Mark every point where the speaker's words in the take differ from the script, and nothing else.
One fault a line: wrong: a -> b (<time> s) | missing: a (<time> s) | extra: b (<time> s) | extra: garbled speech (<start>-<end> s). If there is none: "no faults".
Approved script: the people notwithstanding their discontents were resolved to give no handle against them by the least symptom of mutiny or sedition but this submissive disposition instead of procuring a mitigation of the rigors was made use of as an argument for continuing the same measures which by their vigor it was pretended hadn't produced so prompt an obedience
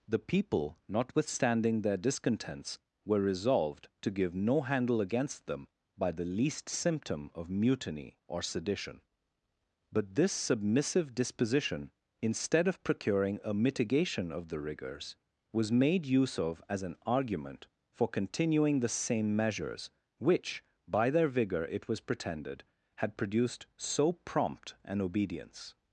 wrong: hadn't -> had (22.9 s)